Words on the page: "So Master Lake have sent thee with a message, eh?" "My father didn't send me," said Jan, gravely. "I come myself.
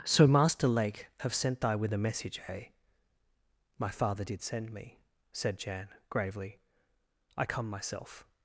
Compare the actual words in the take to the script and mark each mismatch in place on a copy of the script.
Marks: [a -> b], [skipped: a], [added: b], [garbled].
"So Master Lake have sent [thee -> thy] with a message, eh?" "My father [didn't -> did] send me," said Jan, gravely. "I come myself.